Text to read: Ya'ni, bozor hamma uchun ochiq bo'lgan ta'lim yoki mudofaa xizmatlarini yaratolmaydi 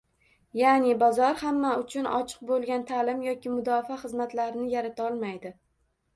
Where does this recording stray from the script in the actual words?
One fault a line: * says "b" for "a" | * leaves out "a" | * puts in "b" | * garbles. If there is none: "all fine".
all fine